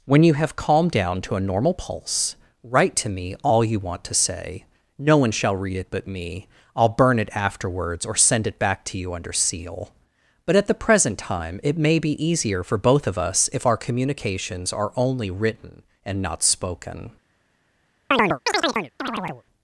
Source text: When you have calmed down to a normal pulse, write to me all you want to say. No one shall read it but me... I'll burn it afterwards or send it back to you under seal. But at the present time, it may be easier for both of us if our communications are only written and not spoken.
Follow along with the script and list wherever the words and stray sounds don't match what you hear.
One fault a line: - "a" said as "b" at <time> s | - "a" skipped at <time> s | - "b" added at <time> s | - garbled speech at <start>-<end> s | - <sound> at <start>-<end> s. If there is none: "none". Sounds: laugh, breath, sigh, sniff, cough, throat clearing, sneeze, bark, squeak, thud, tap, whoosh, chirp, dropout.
- chirp at 18.1-19.4 s